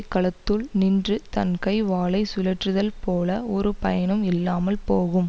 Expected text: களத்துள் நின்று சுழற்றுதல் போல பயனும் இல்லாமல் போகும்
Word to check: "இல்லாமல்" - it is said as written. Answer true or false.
true